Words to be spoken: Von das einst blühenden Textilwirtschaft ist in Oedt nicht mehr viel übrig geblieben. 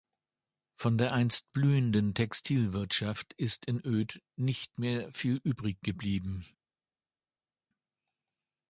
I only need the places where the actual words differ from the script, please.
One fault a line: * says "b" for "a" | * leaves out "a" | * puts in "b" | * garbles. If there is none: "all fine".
* says "der" for "das"